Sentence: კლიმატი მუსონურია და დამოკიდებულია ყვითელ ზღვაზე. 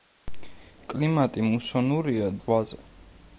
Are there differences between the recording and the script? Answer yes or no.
yes